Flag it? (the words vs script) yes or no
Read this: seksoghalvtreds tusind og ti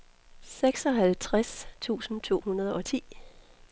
yes